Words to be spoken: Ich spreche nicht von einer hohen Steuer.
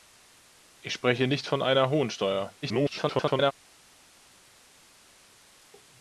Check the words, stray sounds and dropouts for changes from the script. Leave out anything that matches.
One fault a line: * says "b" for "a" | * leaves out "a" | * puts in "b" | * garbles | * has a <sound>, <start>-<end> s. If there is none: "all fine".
* garbles